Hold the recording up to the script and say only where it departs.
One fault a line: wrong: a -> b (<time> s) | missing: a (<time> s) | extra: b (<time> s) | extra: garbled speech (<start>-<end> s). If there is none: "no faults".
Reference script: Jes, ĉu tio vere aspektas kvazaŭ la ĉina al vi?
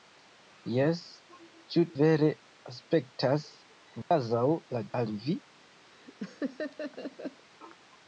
missing: tio (1.8 s)
missing: ĉina (4.9 s)